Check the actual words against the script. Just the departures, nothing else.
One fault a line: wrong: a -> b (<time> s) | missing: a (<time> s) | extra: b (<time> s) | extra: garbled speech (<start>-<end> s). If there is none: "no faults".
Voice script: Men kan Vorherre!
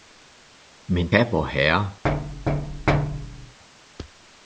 no faults